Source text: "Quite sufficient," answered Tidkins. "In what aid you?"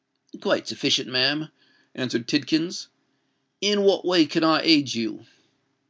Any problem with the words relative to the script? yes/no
yes